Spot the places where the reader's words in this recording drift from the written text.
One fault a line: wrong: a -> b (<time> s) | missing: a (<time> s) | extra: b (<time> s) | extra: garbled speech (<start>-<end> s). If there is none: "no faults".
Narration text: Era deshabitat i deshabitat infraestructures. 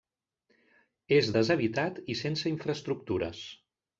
wrong: Era -> És (1.2 s)
wrong: deshabitat -> sense (2.2 s)